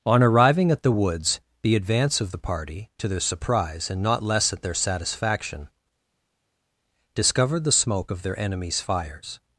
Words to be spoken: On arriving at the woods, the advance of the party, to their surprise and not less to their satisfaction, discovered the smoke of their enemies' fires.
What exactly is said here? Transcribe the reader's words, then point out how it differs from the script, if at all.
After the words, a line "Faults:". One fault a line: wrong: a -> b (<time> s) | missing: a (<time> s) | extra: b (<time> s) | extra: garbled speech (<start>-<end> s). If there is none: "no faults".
On arriving at the woods, the advance of the party, to their surprise and not less at their satisfaction, discovered the smoke of their enemies' fires.
Faults:
wrong: to -> at (4.5 s)